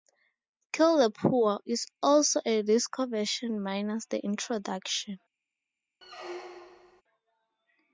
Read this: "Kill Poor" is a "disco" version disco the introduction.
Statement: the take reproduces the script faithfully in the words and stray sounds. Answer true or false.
false